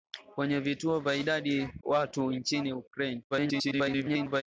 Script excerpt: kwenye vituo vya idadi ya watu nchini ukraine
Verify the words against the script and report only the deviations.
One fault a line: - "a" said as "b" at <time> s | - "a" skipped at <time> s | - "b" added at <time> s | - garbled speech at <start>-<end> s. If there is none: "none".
- "ya" skipped at 1.7 s
- garbled speech at 3.3-4.4 s